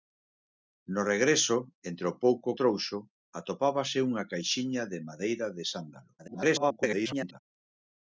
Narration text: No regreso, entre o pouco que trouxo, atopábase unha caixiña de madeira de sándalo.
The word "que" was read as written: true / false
false